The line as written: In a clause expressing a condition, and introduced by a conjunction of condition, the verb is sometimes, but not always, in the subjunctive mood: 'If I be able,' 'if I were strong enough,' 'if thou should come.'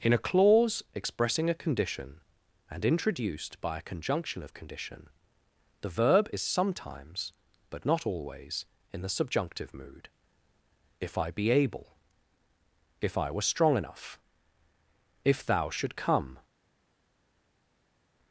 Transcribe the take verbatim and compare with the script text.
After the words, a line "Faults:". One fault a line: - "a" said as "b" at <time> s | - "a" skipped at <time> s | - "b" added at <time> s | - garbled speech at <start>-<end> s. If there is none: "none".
In a clause expressing a condition, and introduced by a conjunction of condition, the verb is sometimes, but not always, in the subjunctive mood: 'If I be able,' 'if I were strong enough,' 'if thou should come.'
Faults:
none